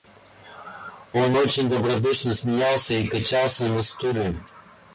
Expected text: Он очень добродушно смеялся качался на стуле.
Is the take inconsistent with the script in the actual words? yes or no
yes